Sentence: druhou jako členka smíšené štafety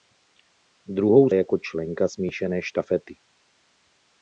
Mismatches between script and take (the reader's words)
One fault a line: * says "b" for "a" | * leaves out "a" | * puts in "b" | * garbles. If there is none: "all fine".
all fine